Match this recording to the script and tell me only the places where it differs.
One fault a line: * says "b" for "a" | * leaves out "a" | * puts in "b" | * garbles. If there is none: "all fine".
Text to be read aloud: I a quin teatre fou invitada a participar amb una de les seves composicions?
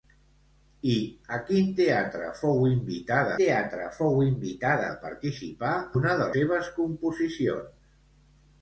* puts in "teatre fou invitada"
* leaves out "amb"
* leaves out "les"